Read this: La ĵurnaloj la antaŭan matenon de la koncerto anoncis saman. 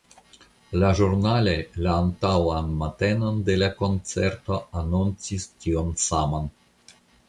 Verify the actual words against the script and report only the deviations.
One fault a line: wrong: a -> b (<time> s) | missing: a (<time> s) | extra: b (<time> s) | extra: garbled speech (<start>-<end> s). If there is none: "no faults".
extra: tion (5.6 s)